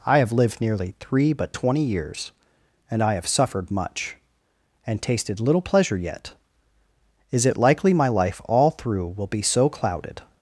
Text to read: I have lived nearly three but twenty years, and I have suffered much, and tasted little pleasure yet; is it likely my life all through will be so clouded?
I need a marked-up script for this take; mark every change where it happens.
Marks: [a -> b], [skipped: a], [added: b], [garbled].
I have lived nearly three but twenty years, and I have suffered much, and tasted little pleasure yet; is it likely my life all through will be so clouded?